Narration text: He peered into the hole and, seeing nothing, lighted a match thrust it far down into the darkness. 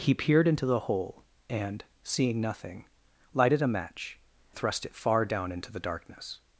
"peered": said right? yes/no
yes